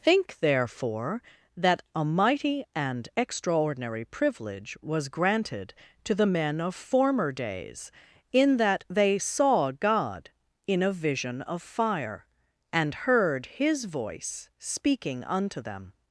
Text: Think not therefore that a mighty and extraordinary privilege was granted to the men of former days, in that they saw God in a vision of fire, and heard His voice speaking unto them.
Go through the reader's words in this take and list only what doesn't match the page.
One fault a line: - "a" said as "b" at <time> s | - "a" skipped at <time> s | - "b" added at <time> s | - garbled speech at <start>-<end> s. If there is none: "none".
- "not" skipped at 0.4 s